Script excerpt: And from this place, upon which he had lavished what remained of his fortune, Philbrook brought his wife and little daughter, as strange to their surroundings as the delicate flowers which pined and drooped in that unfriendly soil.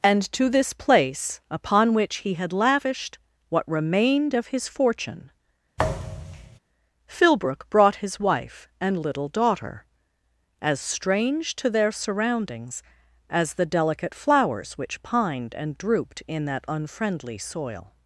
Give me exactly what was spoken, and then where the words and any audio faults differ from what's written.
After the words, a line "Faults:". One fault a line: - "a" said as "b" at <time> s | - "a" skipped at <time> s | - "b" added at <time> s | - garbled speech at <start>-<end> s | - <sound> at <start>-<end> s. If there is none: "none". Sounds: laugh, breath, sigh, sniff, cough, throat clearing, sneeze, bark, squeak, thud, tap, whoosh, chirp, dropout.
And to this place, upon which he had lavished what remained of his fortune, Philbrook brought his wife and little daughter, as strange to their surroundings as the delicate flowers which pined and drooped in that unfriendly soil.
Faults:
- "from" said as "to" at 0.3 s
- thud at 5.8-6.6 s